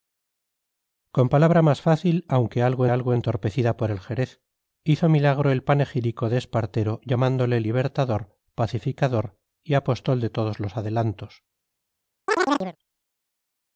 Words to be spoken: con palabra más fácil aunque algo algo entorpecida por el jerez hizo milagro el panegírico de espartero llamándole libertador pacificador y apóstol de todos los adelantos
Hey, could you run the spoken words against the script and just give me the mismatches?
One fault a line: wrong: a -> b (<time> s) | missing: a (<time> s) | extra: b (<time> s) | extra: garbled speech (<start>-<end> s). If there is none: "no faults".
no faults